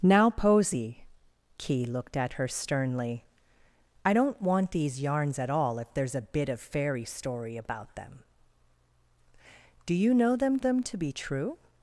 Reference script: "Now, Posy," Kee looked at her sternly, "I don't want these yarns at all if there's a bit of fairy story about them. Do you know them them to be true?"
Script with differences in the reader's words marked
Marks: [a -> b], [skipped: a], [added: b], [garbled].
"Now, Posy," Kee looked at her sternly, "I don't want these yarns at all if there's a bit of fairy story about them. Do you know them them to be true?"